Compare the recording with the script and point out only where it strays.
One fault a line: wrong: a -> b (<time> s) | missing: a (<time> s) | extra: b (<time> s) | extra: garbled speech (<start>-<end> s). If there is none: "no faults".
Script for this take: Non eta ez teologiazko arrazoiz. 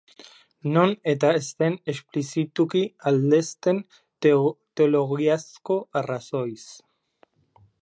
extra: den esplizituki aldezten (1.6 s)